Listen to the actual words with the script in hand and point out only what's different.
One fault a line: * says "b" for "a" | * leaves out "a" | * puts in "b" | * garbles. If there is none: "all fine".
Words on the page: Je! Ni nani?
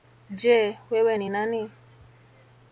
* puts in "Wewe"